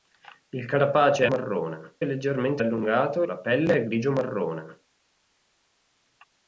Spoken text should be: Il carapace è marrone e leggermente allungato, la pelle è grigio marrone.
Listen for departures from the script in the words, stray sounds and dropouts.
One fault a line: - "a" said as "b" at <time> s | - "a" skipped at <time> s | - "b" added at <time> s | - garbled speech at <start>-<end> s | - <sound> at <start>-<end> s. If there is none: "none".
none